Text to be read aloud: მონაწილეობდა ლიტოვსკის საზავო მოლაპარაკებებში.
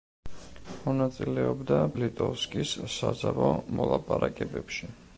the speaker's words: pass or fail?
pass